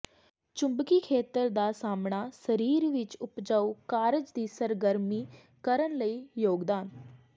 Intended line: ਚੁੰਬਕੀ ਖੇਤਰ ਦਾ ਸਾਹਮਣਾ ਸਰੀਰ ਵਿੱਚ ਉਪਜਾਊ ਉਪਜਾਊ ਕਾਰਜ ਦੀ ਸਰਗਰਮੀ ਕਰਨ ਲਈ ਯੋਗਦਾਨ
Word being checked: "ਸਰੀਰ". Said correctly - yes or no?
yes